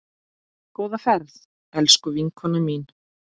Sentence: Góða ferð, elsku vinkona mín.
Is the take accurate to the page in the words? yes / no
yes